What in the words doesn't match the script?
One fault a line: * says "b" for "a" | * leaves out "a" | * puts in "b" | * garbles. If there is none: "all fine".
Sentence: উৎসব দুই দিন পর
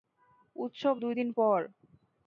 all fine